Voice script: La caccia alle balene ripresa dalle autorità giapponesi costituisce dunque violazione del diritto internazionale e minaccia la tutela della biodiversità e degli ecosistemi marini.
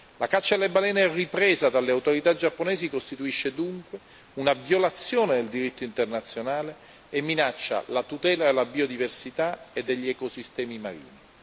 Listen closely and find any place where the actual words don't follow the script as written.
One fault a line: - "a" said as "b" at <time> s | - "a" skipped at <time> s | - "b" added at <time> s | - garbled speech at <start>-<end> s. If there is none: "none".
- "una" added at 4.3 s